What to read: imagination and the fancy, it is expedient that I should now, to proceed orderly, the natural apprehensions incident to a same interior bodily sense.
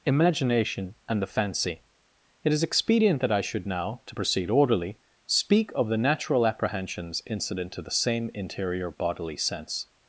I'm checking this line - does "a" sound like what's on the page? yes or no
no